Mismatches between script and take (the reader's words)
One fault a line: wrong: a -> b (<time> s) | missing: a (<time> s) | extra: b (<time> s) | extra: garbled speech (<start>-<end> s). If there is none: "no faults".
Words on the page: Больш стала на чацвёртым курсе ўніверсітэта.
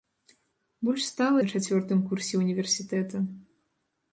no faults